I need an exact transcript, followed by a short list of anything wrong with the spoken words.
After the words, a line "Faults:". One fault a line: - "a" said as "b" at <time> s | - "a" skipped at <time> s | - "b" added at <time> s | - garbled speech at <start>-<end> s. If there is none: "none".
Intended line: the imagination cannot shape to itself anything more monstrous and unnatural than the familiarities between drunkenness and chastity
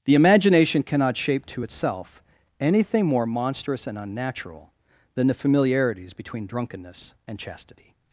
the imagination cannot shape to itself anything more monstrous and unnatural than the familiarities between drunkenness and chastity
Faults:
none